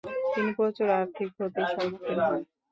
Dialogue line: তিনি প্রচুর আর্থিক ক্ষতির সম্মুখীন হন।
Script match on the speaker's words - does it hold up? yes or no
yes